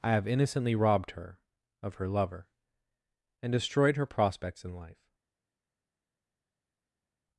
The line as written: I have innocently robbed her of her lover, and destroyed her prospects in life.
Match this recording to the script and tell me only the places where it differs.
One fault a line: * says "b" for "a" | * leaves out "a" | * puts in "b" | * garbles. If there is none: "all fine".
all fine